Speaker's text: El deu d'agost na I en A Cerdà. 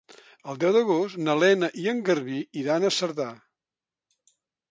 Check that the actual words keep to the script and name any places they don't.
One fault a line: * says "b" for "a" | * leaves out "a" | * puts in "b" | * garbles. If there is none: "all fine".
* puts in "Lena"
* puts in "Garbí iran"